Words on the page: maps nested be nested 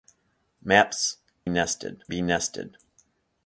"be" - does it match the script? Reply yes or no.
yes